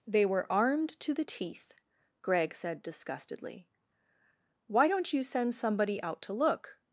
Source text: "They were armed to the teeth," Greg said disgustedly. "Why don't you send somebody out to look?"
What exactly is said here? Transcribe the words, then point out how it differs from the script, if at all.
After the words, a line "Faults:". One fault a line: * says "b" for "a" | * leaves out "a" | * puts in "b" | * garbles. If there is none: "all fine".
"They were armed to the teeth," Greg said disgustedly. "Why don't you send somebody out to look?"
Faults:
all fine